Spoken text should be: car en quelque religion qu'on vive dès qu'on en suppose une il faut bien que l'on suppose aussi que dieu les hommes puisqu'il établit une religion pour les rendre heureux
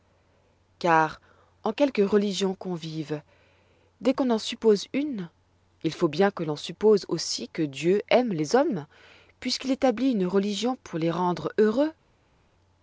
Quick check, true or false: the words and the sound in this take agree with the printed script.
false